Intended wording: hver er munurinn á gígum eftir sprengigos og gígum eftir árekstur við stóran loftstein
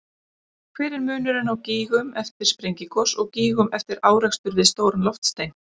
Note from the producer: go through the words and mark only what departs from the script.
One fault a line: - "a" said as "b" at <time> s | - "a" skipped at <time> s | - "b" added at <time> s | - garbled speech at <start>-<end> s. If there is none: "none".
none